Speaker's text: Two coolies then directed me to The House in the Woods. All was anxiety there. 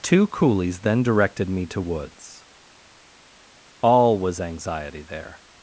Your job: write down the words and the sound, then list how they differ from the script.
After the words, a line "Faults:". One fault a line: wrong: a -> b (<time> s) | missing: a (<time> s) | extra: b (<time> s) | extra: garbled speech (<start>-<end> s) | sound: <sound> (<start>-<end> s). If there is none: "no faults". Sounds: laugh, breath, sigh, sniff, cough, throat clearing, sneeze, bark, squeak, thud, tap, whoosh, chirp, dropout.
Two coolies then directed me to Woods. All was anxiety there.
Faults:
missing: The House in the (1.8 s)